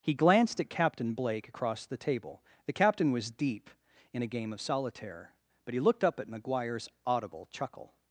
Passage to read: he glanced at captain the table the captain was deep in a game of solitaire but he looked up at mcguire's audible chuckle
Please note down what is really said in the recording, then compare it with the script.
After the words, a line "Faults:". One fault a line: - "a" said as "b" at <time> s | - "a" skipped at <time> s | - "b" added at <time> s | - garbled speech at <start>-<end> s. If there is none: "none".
he glanced at captain blake across the table the captain was deep in a game of solitaire but he looked up at mcguire's audible chuckle
Faults:
- "blake across" added at 1.1 s